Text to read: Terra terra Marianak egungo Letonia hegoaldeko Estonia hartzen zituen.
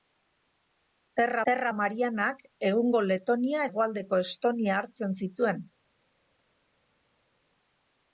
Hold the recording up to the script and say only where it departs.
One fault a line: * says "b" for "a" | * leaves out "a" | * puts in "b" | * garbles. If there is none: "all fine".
all fine